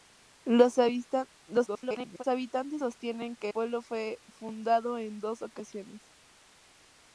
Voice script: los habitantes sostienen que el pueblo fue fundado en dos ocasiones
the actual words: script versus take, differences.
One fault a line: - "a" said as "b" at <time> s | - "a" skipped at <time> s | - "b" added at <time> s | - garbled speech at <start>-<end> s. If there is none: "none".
- garbled speech at 1.7-2.2 s
- "el" skipped at 3.5 s